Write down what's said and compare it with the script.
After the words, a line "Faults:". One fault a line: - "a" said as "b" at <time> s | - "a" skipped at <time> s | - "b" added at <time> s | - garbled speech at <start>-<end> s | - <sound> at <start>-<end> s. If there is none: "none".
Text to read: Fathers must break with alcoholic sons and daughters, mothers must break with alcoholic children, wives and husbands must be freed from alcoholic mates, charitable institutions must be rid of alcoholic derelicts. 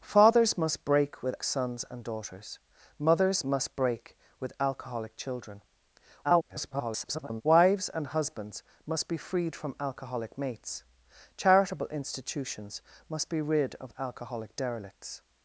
Fathers must break with sons and daughters, mothers must break with alcoholic children, [garbled] wives and husbands must be freed from alcoholic mates, charitable institutions must be rid of alcoholic derelicts.
Faults:
- "alcoholic" skipped at 1.4 s
- garbled speech at 6.2-7.4 s